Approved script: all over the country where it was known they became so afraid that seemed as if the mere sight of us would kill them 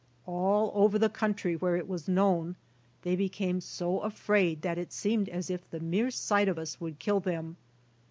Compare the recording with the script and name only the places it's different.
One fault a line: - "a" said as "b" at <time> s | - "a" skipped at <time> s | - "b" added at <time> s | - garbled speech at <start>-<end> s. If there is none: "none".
- "it" added at 4.8 s